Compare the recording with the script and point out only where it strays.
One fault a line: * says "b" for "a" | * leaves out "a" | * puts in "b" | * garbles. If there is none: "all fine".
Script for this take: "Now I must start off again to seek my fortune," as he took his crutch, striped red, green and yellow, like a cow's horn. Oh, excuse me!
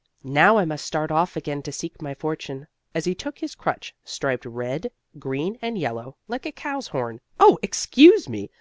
all fine